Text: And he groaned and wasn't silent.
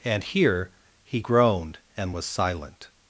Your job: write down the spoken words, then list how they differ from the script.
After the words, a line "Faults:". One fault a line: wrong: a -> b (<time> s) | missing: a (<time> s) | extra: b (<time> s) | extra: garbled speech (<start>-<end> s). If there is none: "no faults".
And here he groaned and was silent.
Faults:
extra: here (0.2 s)
wrong: wasn't -> was (2.1 s)